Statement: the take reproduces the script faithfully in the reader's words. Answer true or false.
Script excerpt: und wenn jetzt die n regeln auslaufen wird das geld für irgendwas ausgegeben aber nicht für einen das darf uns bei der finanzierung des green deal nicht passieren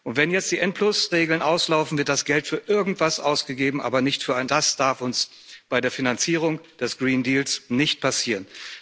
true